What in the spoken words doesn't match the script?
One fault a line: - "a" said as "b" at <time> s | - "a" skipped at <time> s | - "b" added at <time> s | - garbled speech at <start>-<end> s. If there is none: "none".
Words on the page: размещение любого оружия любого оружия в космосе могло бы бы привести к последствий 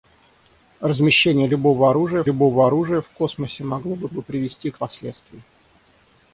none